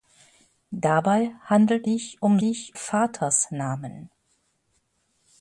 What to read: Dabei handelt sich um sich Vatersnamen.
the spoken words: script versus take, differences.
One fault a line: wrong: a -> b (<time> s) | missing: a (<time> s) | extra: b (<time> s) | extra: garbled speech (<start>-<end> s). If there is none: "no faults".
no faults